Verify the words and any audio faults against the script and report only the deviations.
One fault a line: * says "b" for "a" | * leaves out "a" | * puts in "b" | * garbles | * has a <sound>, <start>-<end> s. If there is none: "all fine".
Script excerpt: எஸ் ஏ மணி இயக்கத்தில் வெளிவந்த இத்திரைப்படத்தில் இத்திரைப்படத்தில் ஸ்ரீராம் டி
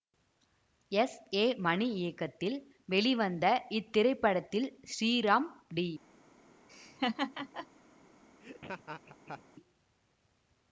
* leaves out "இத்திரைப்படத்தில்"
* has a laugh, 6.7-7.7 s
* has a laugh, 8.4-9.4 s